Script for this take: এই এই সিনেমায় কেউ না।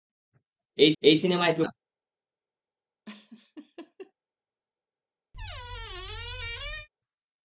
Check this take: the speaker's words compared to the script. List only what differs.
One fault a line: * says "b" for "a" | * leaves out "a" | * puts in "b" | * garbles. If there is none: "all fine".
all fine